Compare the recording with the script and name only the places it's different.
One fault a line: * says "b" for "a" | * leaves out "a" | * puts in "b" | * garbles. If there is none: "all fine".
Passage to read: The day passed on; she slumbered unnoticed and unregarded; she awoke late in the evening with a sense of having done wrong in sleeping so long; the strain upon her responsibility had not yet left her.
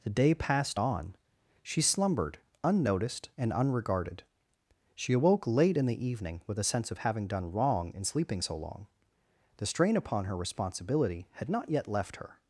all fine